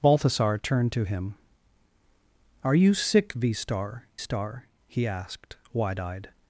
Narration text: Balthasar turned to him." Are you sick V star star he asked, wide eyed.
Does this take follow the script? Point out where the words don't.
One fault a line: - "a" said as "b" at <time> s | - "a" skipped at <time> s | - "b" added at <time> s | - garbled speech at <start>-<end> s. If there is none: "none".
none